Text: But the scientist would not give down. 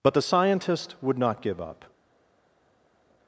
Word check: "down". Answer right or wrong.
wrong